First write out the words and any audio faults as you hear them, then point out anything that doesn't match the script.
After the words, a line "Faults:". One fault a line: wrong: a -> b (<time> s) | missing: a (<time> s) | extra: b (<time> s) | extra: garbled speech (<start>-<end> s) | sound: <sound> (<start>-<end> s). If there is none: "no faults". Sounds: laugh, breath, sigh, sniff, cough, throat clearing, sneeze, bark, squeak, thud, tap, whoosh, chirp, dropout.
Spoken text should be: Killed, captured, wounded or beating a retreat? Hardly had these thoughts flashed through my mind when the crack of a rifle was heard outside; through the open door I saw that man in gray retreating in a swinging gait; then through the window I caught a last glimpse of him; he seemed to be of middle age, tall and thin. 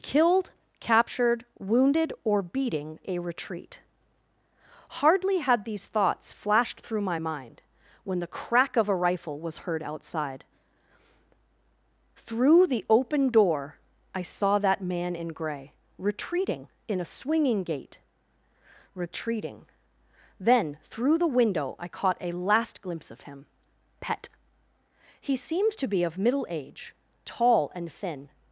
Killed, captured, wounded or beating a retreat? Hardly had these thoughts flashed through my mind when the crack of a rifle was heard outside; through the open door I saw that man in gray retreating in a swinging gait; retreating then through the window I caught a last glimpse of him; pet he seemed to be of middle age, tall and thin.
Faults:
extra: retreating (18.9 s)
extra: pet (24.0 s)